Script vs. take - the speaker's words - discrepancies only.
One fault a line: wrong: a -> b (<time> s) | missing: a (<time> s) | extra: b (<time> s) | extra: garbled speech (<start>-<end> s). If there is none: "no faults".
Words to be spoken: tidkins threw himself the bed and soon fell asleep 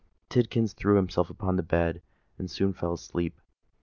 extra: upon (1.3 s)